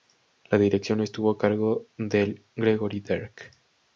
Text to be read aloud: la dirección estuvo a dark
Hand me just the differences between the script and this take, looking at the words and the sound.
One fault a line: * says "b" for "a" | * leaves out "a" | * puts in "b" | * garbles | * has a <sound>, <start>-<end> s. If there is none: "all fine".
* puts in "cargo del gregory"